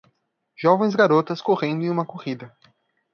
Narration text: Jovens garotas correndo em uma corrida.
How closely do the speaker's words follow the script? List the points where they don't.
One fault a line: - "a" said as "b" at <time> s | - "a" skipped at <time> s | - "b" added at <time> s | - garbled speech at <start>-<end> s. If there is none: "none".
none